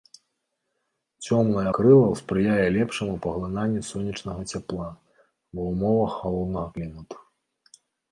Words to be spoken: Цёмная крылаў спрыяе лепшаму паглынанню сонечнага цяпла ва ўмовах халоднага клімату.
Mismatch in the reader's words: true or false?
false